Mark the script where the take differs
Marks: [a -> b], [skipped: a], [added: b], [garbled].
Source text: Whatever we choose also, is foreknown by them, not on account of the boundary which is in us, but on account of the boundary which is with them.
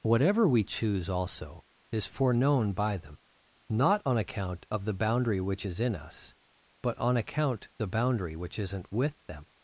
Whatever we choose also, is foreknown by them, not on account of the boundary which is in us, but on account [skipped: of] the boundary which [is -> isn't] with them.